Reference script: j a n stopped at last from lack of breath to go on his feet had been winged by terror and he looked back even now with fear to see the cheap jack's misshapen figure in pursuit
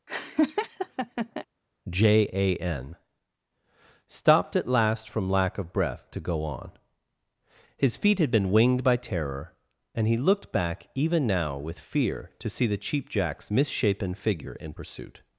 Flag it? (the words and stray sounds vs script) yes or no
yes